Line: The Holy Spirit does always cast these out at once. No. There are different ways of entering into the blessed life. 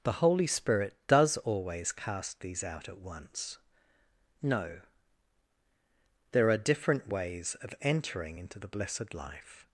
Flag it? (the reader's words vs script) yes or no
no